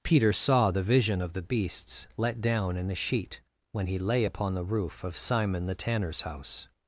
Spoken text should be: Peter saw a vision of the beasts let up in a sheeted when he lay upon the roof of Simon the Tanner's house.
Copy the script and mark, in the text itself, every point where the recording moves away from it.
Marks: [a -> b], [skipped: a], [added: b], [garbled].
Peter saw [a -> the] vision of the beasts let [up -> down] in a [sheeted -> sheet] when he lay upon the roof of Simon the Tanner's house.